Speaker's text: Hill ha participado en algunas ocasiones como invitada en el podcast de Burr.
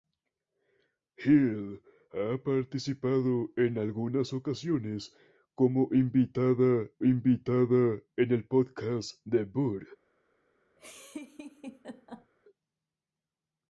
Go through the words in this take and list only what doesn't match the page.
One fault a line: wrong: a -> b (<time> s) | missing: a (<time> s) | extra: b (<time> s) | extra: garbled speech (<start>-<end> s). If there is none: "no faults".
extra: invitada (7.0 s)